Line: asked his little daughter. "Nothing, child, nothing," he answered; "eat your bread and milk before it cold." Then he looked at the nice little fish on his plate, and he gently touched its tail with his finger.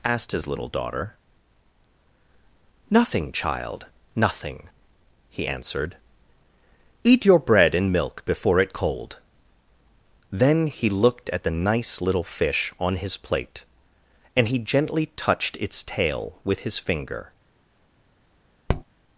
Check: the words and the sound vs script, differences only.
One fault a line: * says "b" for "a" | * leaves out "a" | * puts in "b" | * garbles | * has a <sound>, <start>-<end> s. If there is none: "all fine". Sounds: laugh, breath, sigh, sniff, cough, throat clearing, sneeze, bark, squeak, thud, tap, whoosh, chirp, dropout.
* has a tap, 18.7-18.8 s